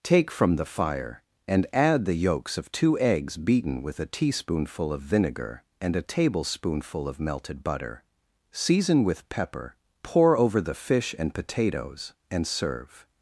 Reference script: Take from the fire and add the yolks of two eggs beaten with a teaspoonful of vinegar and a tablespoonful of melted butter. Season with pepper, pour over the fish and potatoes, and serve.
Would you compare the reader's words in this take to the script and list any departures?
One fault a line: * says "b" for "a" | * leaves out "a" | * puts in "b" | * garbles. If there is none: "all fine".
all fine